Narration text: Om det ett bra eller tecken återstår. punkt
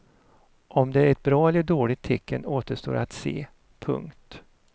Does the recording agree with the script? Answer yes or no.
no